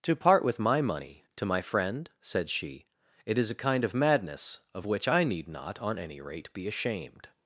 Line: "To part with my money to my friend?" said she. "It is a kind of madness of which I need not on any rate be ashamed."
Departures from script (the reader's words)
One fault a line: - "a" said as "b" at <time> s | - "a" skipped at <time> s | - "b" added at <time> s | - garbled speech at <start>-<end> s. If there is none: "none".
none